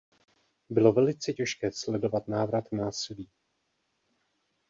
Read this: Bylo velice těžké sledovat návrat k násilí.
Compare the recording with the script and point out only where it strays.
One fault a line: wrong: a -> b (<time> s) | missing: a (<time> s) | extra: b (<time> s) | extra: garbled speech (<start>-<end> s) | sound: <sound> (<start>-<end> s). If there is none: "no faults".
no faults